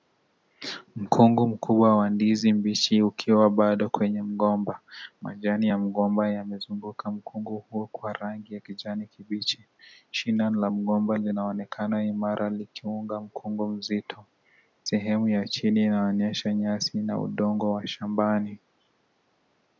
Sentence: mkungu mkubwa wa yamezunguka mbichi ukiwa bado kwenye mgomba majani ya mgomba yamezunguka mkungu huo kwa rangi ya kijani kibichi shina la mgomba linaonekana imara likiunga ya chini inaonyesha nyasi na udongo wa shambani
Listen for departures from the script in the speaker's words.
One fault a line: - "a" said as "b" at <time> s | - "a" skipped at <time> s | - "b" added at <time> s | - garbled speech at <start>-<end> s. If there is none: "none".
- "yamezunguka" said as "ndizi" at 2.1 s
- "mkungu mzito sehemu" added at 13.2 s